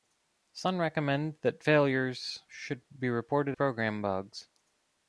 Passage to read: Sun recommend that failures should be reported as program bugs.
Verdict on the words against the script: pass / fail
fail